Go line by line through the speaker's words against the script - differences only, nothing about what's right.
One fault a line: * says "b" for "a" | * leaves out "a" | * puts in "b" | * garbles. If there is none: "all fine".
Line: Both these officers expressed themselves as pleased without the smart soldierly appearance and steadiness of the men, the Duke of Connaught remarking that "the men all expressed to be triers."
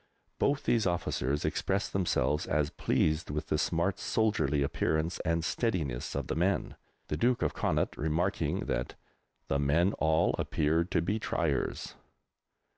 * says "with" for "without"
* says "appeared" for "expressed"